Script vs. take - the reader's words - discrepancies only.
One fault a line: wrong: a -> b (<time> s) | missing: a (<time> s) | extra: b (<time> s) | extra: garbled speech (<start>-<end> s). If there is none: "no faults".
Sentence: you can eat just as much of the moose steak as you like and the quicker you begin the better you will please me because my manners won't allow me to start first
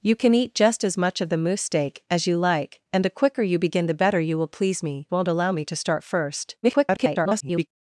missing: because my manners (5.1 s)
extra: garbled speech (6.6-7.7 s)